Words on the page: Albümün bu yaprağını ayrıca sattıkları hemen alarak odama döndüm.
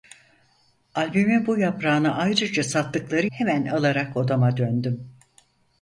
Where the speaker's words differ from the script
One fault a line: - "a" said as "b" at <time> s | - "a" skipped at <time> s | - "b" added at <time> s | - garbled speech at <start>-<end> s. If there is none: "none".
none